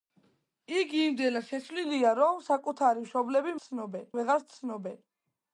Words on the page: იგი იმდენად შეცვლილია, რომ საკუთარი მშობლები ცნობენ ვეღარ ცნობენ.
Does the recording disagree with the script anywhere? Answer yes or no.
no